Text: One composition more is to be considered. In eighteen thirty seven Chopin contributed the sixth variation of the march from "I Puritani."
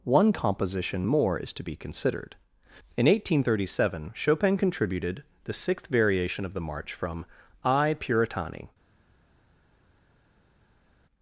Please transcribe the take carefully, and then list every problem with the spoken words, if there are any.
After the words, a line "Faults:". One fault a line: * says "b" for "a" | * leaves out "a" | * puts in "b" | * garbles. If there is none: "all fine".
One composition more is to be considered. In eighteen thirty seven Chopin contributed the sixth variation of the march from "I Puritani."
Faults:
all fine